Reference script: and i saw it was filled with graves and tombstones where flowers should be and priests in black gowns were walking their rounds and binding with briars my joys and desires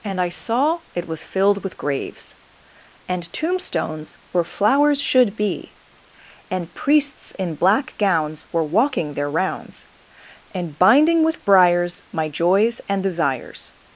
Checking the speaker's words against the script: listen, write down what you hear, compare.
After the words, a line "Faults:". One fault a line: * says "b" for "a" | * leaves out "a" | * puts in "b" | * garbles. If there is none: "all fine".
and i saw it was filled with graves and tombstones where flowers should be and priests in black gowns were walking their rounds and binding with briars my joys and desires
Faults:
all fine